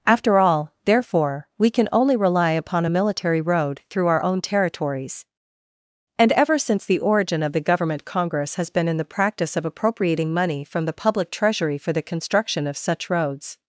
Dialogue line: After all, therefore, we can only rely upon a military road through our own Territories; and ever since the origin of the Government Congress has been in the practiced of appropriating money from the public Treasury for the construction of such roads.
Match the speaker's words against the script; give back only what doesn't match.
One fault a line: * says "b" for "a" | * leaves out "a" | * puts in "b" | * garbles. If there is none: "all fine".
* says "practice" for "practiced"